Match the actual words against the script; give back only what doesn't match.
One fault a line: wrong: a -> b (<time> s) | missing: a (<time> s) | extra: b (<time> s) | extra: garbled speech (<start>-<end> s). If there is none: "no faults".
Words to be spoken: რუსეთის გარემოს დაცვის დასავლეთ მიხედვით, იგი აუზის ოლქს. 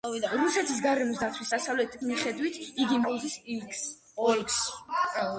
no faults